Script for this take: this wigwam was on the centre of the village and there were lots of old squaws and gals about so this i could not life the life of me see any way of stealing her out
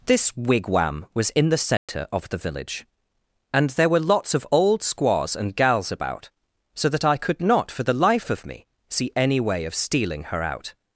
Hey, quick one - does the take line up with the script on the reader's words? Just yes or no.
no